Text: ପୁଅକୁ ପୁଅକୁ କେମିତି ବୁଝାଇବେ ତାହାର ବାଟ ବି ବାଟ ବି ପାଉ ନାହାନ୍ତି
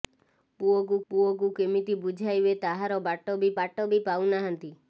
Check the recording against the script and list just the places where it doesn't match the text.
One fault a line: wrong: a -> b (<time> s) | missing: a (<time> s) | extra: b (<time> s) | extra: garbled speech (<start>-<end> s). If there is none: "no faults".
no faults